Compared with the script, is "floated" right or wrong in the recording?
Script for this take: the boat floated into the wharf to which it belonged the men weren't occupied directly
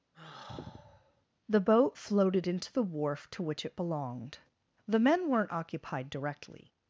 right